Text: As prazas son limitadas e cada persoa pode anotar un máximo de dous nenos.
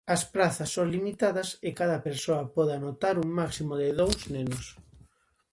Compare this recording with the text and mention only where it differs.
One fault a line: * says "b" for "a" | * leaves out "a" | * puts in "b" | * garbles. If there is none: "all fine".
all fine